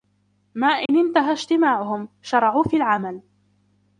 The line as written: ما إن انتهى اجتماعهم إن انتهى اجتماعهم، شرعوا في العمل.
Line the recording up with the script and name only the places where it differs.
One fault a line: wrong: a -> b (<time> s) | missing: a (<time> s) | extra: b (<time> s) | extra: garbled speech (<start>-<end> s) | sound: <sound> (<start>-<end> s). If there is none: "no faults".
sound: dropout (0.9-0.9 s)
missing: إن انتهى اجتماعهم (2.1 s)